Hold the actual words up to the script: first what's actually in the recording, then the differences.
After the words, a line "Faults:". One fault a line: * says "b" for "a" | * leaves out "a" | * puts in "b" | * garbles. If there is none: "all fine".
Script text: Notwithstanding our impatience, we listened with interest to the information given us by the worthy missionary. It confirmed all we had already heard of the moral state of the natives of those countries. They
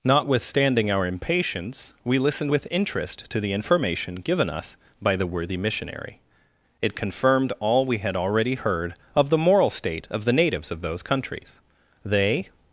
Notwithstanding our impatience, we listened with interest to the information given us by the worthy missionary. It confirmed all we had already heard of the moral state of the natives of those countries. They
Faults:
all fine